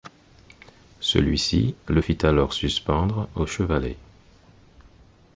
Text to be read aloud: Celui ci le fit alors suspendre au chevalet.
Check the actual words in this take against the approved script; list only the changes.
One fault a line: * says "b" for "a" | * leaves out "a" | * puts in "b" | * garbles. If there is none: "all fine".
all fine